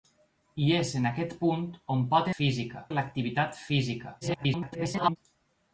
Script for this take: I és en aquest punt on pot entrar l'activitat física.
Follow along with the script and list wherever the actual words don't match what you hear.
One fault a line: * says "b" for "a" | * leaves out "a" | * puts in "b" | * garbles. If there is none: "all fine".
* says "física" for "entrar"
* garbles